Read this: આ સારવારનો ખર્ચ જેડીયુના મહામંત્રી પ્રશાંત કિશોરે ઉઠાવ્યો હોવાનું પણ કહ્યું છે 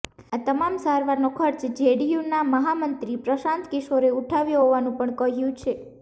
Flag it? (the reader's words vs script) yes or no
yes